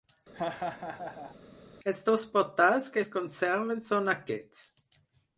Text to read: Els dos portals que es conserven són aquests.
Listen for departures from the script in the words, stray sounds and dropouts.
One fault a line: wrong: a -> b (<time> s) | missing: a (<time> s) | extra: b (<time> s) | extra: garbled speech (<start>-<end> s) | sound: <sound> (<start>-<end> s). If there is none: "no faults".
sound: laugh (0.3-1.4 s)